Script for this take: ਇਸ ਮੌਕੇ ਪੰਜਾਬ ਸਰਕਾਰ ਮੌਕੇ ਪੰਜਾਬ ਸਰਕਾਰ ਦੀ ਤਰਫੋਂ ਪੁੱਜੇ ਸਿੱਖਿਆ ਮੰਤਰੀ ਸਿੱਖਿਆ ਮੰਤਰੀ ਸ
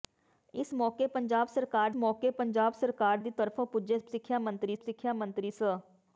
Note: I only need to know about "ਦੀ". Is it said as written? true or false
true